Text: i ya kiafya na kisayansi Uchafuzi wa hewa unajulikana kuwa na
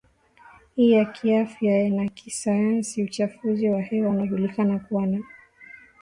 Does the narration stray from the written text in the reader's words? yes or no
no